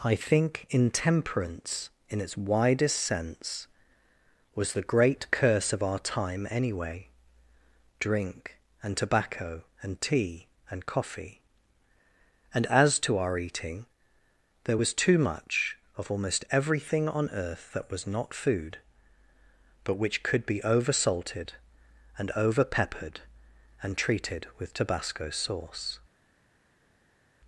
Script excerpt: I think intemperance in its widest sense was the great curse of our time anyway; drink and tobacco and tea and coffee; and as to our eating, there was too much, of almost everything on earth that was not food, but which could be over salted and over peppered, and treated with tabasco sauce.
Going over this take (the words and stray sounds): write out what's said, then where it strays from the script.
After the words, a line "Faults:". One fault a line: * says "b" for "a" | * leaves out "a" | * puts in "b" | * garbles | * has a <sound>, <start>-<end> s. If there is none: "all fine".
I think intemperance in its widest sense was the great curse of our time anyway; drink and tobacco and tea and coffee; and as to our eating, there was too much, of almost everything on earth that was not food, but which could be over salted and over peppered, and treated with tabasco sauce.
Faults:
all fine